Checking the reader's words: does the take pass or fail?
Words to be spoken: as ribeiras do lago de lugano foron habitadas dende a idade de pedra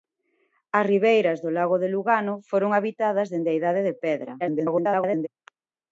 fail